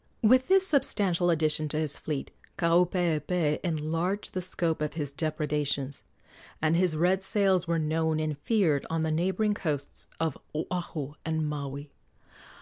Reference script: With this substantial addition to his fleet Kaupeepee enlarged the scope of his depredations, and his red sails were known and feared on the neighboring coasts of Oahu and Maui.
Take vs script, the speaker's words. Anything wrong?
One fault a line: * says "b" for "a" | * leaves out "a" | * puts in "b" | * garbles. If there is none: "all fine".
all fine